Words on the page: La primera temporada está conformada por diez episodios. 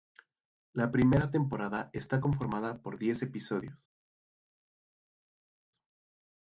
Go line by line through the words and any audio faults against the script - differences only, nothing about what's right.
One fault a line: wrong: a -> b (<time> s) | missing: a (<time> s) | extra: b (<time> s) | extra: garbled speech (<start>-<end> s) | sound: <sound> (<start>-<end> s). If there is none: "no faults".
no faults